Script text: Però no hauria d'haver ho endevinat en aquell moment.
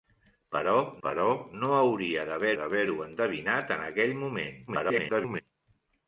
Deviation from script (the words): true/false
true